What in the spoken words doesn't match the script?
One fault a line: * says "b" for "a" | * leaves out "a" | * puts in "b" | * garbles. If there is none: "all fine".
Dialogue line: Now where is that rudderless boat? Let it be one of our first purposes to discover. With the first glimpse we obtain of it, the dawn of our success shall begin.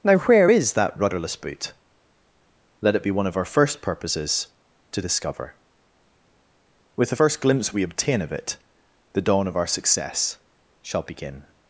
* says "boot" for "boat"